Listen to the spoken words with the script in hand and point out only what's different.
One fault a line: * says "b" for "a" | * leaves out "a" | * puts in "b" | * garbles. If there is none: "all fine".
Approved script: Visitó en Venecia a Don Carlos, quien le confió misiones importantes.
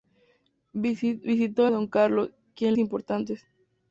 * leaves out "en Venecia"
* leaves out "le confió misiones"